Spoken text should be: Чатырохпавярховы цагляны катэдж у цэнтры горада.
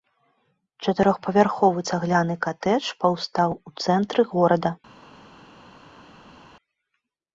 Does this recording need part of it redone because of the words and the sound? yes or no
yes